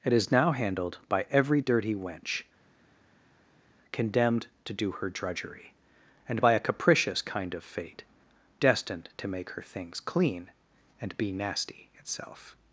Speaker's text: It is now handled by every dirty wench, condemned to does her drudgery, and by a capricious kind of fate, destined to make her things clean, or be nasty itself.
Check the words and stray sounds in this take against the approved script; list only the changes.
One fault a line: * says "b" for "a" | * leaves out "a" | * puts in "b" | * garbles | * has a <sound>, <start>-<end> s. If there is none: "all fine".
* says "do" for "does"
* says "and" for "or"